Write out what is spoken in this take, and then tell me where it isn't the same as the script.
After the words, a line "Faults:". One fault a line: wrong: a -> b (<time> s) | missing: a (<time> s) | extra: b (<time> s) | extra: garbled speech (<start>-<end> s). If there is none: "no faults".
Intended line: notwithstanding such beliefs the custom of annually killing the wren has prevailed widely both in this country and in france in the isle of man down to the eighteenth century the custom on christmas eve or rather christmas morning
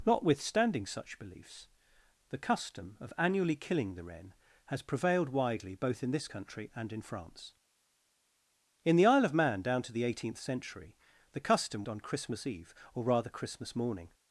notwithstanding such beliefs the custom of annually killing the wren has prevailed widely both in this country and in france in the isle of man down to the eighteenth century the custom on christmas eve or rather christmas morning
Faults:
no faults